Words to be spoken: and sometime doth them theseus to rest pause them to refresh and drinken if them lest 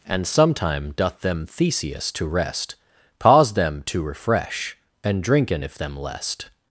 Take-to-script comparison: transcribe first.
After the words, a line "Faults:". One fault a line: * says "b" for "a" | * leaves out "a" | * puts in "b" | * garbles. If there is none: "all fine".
and sometime doth them theseus to rest pause them to refresh and drinken if them lest
Faults:
all fine